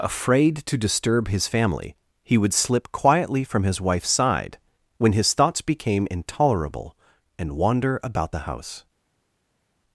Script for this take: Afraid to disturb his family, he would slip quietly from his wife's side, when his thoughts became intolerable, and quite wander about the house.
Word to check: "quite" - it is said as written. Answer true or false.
false